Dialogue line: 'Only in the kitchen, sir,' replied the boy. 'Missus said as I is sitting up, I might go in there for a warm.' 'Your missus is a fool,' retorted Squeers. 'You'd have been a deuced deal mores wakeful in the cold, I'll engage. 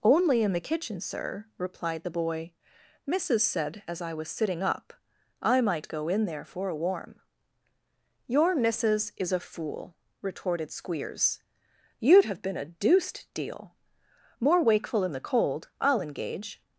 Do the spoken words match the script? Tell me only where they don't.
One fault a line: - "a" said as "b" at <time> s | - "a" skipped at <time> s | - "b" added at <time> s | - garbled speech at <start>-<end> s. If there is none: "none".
- "is" said as "was" at 4.1 s
- "mores" said as "more" at 14.4 s